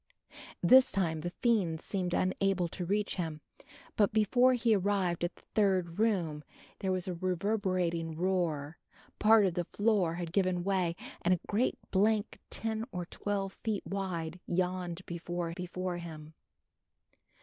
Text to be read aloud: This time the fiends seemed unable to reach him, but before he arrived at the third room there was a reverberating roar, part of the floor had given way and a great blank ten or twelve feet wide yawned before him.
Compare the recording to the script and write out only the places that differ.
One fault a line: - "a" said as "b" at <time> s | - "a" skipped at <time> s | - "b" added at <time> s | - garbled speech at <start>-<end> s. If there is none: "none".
- "before" added at 15.5 s